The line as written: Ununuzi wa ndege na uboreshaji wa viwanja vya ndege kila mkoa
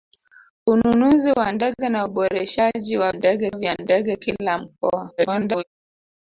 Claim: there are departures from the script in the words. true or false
true